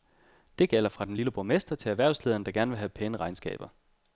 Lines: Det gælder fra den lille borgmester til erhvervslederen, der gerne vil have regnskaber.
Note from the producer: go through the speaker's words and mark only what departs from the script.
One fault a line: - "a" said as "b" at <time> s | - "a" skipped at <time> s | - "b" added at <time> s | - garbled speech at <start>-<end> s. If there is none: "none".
- "pæne" added at 2.9 s